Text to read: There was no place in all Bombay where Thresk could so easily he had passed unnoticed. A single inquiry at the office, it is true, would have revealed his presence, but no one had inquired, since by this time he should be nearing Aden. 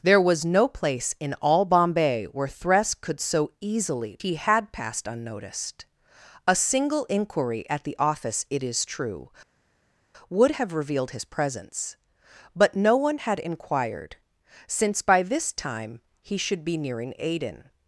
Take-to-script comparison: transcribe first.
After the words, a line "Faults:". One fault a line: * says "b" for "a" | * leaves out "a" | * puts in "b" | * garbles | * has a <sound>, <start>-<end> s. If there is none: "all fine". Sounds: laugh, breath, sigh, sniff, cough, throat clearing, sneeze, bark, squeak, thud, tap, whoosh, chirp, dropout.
There was no place in all Bombay where Thresk could so easily he had passed unnoticed. A single inquiry at the office, it is true, would have revealed his presence, but no one had inquired, since by this time he should be nearing Aden.
Faults:
all fine